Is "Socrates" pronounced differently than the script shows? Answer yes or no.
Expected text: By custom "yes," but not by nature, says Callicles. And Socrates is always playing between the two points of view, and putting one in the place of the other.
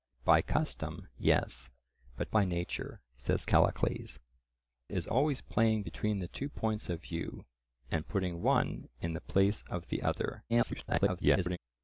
yes